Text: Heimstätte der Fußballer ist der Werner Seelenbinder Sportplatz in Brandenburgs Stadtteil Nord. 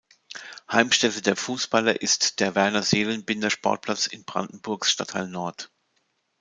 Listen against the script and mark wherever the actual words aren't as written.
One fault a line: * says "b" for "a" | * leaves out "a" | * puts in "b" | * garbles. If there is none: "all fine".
all fine